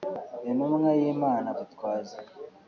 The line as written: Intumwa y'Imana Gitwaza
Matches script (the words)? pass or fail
pass